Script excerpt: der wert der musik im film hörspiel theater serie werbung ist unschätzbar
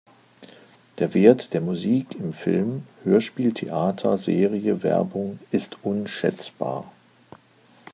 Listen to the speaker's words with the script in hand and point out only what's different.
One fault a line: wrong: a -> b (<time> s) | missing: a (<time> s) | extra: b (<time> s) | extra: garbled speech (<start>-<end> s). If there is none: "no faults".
no faults